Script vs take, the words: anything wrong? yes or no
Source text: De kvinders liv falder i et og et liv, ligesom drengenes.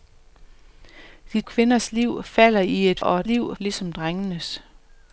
no